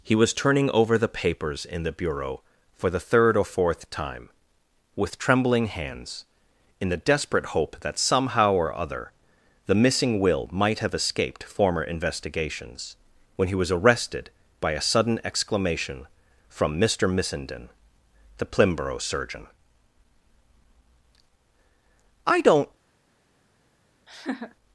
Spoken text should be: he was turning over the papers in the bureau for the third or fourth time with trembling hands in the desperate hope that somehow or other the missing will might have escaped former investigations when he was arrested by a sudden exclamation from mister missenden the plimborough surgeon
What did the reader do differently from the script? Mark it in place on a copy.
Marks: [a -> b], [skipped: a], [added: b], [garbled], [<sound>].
he was turning over the papers in the bureau for the third or fourth time with trembling hands in the desperate hope that somehow or other the missing will might have escaped former investigations when he was arrested by a sudden exclamation from mister missenden the plimborough surgeon [added: i don't] [laugh]